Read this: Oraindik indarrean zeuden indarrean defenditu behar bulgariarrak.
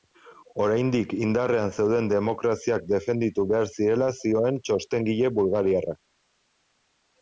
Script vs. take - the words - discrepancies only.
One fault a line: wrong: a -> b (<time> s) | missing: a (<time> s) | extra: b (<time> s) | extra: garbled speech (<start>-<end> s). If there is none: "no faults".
wrong: indarrean -> demokraziak (2.1 s)
extra: zirela zioen txostengile (3.8 s)